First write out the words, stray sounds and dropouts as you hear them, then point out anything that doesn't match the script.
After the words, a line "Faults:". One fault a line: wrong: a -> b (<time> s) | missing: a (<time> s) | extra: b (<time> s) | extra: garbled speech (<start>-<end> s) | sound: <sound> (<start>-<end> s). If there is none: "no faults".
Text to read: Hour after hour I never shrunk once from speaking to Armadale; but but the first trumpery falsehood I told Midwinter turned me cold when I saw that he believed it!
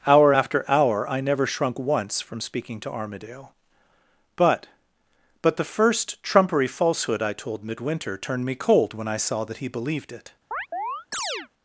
Hour after hour I never shrunk once from speaking to Armadale; but but the first trumpery falsehood I told Midwinter turned me cold when I saw that he believed it!
Faults:
sound: chirp (10.5-11.5 s)